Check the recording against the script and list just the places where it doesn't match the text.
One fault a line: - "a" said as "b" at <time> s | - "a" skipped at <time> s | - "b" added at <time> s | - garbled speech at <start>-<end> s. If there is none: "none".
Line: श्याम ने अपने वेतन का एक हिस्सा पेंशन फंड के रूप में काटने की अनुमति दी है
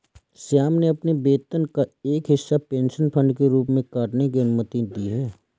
none